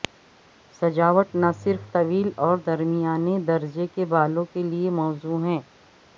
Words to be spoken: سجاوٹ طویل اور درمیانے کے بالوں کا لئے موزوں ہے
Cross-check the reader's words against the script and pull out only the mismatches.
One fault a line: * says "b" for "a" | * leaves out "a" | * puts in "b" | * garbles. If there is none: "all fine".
* puts in "نہ صرف"
* puts in "درجے"
* says "کے" for "کا"